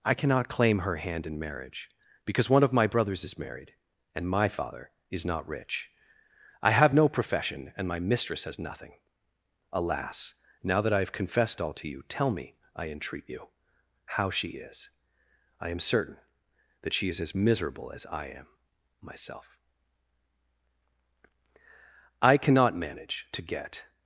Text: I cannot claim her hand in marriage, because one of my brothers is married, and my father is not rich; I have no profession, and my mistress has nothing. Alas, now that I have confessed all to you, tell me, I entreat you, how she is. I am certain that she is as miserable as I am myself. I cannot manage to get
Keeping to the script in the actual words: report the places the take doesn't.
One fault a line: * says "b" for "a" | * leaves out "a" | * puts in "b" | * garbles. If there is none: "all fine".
all fine